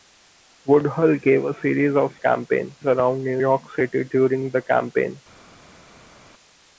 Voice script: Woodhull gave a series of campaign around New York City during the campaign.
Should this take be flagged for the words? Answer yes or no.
no